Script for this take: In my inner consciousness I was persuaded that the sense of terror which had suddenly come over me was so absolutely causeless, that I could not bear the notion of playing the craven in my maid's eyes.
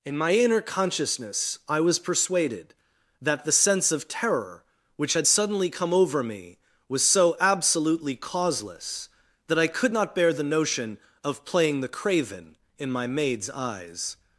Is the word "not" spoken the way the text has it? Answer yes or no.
yes